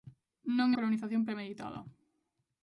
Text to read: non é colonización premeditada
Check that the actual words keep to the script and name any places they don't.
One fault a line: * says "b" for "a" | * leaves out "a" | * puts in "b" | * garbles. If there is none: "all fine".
all fine